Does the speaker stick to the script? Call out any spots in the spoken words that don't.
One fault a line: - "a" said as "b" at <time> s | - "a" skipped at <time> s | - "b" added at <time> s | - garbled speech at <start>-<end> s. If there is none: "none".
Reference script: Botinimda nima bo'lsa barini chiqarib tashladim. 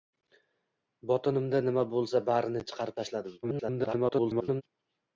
- garbled speech at 3.4-4.6 s